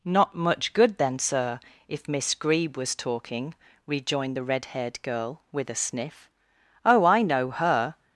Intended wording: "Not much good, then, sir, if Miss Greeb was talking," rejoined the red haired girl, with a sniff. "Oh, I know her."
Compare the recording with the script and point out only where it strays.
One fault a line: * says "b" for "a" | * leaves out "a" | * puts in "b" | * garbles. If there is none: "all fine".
all fine